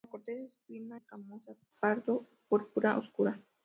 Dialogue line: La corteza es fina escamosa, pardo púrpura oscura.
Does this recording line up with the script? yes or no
yes